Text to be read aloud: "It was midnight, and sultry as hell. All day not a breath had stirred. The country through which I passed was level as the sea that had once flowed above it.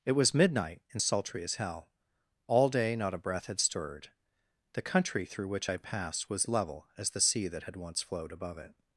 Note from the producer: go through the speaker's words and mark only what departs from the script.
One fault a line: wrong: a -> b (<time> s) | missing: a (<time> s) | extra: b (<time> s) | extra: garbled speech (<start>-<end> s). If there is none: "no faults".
no faults